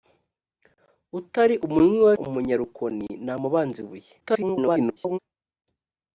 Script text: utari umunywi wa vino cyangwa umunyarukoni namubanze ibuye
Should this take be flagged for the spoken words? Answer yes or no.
yes